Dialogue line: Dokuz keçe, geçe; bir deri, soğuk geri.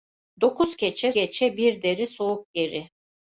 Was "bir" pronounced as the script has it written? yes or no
yes